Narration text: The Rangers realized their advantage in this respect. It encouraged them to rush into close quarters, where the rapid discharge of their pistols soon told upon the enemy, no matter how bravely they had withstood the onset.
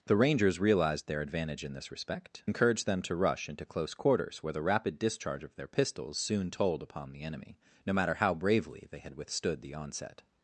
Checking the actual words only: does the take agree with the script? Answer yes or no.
no